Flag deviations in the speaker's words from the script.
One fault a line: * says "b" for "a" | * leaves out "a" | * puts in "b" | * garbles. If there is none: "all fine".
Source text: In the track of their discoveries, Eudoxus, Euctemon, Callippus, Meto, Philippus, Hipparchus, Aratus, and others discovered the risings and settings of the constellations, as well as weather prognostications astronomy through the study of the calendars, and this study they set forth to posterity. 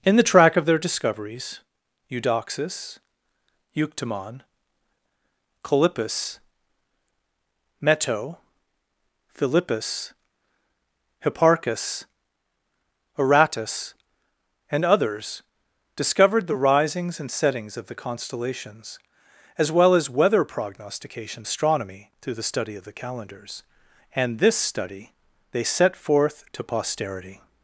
all fine